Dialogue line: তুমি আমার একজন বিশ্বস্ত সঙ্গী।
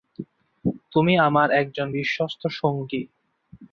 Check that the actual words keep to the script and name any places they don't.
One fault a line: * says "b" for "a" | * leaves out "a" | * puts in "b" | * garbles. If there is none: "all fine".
all fine